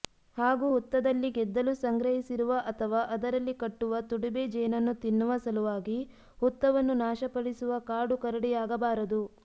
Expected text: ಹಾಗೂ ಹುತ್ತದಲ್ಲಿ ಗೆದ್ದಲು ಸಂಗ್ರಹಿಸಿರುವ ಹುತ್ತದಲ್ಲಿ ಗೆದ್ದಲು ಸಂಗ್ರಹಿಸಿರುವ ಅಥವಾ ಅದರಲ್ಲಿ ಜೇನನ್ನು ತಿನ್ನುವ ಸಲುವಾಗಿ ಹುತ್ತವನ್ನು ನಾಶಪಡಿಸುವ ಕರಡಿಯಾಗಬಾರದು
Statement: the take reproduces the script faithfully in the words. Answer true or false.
false